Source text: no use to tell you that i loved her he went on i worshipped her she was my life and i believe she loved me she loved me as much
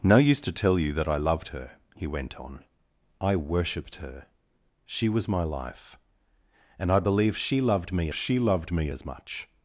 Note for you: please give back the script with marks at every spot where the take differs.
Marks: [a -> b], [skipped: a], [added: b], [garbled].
no use to tell you that i loved her he went on i worshipped her she was my life and i believe she loved me she loved me as much